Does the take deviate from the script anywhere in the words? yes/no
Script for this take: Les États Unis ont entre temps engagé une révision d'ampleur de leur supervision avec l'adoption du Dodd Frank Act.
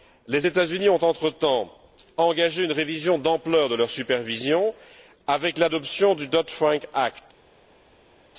no